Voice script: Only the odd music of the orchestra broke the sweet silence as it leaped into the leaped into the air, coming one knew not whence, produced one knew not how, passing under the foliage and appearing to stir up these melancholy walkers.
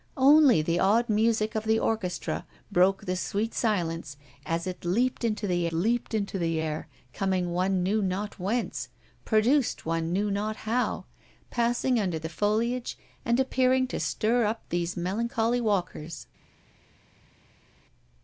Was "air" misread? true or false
false